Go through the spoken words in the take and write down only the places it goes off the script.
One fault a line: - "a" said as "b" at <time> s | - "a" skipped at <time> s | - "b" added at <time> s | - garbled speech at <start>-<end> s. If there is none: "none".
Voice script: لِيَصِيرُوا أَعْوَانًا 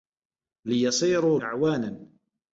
none